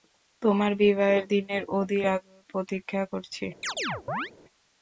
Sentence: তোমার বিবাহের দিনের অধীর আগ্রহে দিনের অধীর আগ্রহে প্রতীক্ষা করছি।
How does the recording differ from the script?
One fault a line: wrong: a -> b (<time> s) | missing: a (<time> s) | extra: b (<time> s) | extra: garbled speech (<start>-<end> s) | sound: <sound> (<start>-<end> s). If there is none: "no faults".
missing: দিনের অধীর আগ্রহে (2.5 s)
sound: chirp (3.6-4.3 s)